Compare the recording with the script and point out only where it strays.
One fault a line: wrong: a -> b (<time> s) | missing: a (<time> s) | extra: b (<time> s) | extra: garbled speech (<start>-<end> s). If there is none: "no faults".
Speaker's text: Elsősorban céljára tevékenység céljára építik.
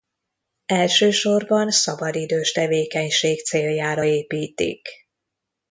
wrong: céljára -> szabadidős (1.7 s)